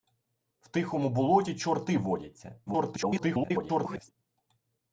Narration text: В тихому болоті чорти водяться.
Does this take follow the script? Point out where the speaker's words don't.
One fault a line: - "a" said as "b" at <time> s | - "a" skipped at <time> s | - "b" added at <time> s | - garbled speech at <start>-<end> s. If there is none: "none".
- garbled speech at 2.7-4.1 s